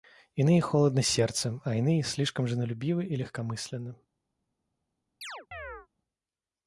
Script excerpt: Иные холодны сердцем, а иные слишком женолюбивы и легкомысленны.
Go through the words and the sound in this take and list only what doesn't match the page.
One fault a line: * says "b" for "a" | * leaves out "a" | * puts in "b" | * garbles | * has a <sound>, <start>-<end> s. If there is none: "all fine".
* has a chirp, 5.2-5.9 s